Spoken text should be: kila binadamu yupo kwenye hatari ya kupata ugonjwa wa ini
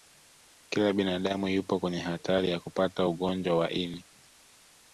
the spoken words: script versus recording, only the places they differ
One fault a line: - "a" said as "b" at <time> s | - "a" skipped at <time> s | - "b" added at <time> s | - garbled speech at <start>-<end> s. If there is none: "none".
none